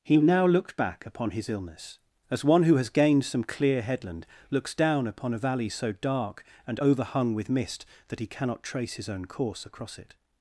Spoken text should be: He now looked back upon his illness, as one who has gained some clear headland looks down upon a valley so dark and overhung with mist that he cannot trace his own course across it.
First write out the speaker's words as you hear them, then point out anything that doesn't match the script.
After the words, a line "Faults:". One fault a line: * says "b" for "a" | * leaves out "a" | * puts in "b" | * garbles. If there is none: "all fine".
He now looked back upon his illness, as one who has gained some clear headland looks down upon a valley so dark and overhung with mist that he cannot trace his own course across it.
Faults:
all fine